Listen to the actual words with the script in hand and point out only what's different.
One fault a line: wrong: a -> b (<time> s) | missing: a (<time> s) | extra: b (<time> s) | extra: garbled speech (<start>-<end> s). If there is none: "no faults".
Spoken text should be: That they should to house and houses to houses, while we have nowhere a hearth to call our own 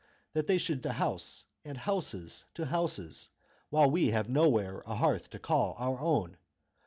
no faults